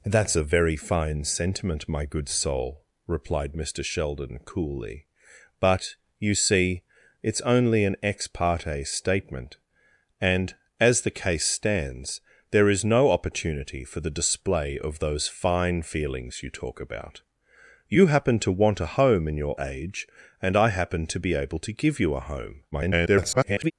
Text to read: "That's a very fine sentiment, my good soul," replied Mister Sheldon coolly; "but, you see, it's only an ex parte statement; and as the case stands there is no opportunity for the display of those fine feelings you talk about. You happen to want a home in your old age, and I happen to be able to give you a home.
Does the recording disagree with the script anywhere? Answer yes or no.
yes